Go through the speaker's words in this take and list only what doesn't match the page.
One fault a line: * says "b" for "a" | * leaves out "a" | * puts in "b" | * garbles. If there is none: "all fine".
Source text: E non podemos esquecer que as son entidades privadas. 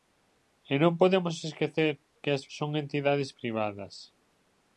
all fine